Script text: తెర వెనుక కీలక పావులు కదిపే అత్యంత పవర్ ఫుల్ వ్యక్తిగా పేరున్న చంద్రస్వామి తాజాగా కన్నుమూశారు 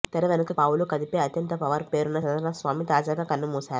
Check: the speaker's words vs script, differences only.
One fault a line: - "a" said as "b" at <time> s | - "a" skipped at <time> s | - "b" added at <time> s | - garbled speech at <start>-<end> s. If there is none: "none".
- "కీలక" skipped at 0.5 s
- "ఫుల్ వ్యక్తిగా" skipped at 1.9 s